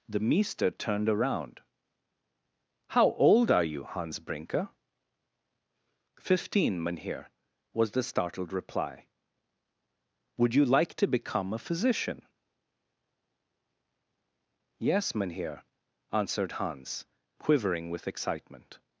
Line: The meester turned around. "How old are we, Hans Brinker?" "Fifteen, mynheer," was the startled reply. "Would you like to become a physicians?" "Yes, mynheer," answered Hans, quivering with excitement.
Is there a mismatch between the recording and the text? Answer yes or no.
yes